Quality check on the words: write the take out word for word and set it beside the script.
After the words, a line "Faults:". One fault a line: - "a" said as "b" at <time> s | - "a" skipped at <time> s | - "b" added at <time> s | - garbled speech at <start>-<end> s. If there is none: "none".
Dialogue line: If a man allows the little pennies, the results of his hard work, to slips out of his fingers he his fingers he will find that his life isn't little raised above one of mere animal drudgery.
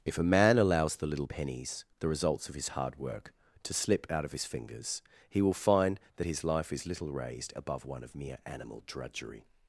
If a man allows the little pennies, the results of his hard work, to slip out of his fingers he will find that his life is little raised above one of mere animal drudgery.
Faults:
- "slips" said as "slip" at 3.7 s
- "his fingers he" skipped at 5.4 s
- "isn't" said as "is" at 6.7 s